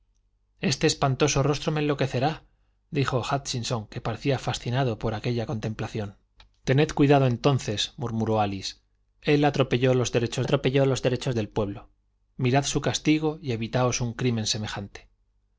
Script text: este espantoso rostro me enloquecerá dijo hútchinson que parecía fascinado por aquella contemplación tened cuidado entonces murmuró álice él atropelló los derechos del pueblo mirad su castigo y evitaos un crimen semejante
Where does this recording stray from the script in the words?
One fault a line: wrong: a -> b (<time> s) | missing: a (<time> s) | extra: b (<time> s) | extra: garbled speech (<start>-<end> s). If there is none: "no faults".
extra: atropelló los derechos (10.4 s)